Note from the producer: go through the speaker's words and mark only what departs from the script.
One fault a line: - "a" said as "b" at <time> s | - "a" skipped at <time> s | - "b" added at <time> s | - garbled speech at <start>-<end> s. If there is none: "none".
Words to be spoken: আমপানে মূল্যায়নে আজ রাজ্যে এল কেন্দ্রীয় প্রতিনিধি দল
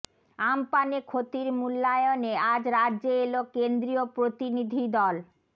- "ক্ষতির" added at 1.0 s